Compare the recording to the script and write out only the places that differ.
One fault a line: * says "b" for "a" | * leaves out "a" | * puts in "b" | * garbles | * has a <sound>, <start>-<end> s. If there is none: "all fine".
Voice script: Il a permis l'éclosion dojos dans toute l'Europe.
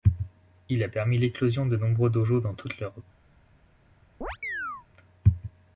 * puts in "de nombreux"
* has a chirp, 4.2-4.9 s